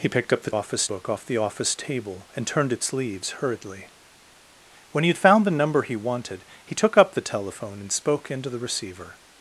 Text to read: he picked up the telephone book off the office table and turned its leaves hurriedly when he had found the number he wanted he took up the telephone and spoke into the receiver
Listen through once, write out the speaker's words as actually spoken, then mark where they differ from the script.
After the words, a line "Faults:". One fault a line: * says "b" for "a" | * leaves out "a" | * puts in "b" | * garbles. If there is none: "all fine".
he picked up the office book off the office table and turned its leaves hurriedly when he had found the number he wanted he took up the telephone and spoke into the receiver
Faults:
* says "office" for "telephone"